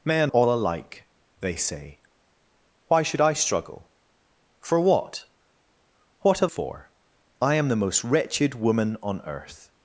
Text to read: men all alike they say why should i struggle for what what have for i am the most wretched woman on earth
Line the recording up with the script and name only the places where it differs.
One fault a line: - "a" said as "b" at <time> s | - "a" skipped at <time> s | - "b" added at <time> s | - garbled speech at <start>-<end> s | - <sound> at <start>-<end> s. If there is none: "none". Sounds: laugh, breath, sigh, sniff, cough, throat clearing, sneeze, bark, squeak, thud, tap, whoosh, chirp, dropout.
none